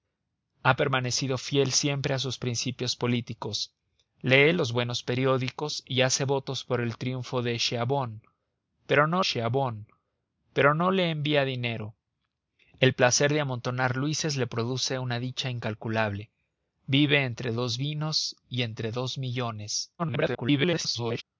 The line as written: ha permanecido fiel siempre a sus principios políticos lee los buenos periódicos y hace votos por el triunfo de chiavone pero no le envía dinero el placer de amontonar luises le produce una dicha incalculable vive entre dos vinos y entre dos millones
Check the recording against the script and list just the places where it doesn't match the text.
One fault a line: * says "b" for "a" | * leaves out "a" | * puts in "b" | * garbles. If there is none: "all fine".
* puts in "chiavone pero no"
* garbles